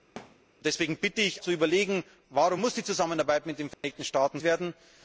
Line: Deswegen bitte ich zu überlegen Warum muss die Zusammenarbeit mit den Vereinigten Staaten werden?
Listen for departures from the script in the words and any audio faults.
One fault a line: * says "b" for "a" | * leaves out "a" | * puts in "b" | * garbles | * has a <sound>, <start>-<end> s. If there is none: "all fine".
* has a thud, 0.2-0.4 s
* has a dropout, 3.7-3.8 s